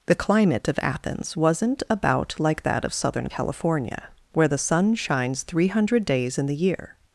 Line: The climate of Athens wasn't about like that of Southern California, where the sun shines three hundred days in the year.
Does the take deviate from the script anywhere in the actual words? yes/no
no